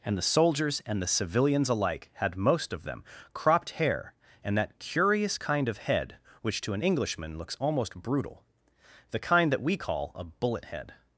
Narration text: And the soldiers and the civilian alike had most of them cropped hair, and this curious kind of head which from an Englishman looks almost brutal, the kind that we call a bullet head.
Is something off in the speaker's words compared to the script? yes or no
yes